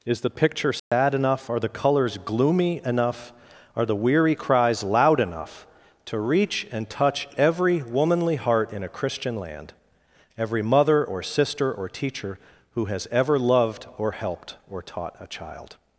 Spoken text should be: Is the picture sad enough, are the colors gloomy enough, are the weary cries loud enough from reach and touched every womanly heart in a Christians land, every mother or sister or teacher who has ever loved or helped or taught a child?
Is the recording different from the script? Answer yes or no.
yes